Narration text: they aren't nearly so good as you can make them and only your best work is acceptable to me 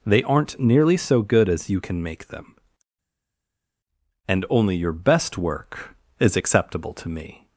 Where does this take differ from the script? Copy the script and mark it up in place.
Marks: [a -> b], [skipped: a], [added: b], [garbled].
they aren't nearly so good as you can make them and only your best work is acceptable to me